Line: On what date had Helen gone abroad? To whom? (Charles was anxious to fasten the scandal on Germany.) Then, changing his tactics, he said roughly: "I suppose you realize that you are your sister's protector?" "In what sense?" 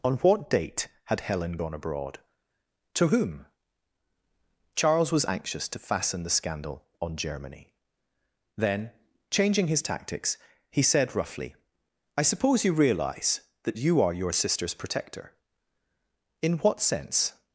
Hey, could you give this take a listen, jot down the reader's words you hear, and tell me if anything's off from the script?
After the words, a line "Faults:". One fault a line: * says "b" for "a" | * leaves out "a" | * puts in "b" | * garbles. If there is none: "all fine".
On what date had Helen gone abroad? To whom? (Charles was anxious to fasten the scandal on Germany.) Then, changing his tactics, he said roughly: "I suppose you realize that you are your sister's protector?" "In what sense?"
Faults:
all fine